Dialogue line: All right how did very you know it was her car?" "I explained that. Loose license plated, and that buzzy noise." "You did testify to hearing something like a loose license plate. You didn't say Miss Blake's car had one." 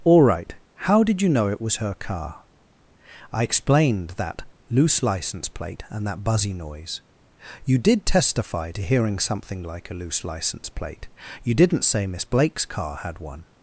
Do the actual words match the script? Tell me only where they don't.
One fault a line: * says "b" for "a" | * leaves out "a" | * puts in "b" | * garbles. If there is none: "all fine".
* leaves out "very"
* says "plate" for "plated"